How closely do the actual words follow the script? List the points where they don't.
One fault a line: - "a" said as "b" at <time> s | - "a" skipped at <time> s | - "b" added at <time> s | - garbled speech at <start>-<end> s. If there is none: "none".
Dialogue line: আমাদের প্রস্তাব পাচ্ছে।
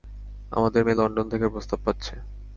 - "মেয়ে লন্ডন থেকে" added at 0.8 s